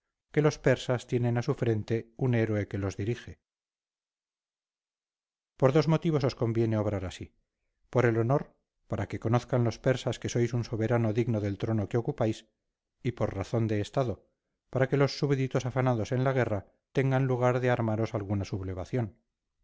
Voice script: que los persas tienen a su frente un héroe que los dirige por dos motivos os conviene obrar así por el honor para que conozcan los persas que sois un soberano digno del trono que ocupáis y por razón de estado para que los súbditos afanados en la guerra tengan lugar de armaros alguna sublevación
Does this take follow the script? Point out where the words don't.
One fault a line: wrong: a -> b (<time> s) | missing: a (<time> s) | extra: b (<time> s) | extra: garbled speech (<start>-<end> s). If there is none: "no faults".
no faults